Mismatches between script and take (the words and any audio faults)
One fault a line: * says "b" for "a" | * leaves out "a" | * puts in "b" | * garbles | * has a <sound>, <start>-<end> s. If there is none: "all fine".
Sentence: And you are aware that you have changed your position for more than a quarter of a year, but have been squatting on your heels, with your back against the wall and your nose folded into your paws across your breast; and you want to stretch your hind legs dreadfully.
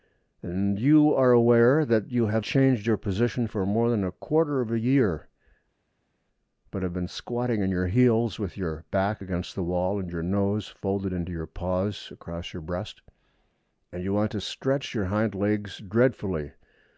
all fine